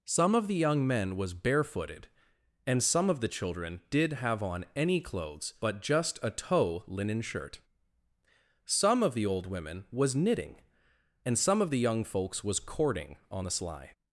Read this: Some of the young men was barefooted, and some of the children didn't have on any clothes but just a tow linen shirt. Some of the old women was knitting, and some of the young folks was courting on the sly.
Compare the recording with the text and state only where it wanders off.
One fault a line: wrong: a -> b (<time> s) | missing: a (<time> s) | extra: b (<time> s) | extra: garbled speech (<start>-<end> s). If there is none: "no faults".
wrong: didn't -> did (3.9 s)